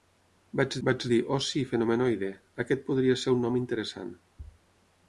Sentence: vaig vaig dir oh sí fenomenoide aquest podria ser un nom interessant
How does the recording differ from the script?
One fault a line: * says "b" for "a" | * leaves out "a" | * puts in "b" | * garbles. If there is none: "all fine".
all fine